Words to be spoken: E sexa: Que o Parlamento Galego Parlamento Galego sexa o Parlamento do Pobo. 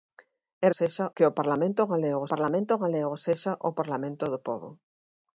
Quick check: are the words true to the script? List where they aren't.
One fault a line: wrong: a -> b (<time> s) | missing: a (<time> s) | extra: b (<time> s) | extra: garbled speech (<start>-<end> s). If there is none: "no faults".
no faults